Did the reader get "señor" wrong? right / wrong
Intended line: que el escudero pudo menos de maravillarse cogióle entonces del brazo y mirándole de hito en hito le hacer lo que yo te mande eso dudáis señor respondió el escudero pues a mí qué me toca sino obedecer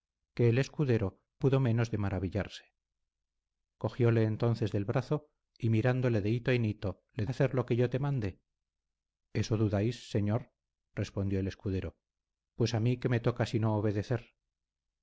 right